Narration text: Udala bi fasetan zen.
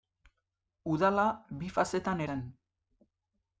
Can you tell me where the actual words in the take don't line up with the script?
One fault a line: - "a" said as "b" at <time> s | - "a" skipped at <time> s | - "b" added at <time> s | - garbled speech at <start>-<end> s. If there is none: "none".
none